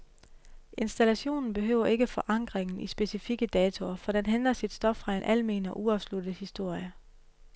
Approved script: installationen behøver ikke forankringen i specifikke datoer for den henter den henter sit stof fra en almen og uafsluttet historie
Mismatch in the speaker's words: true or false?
true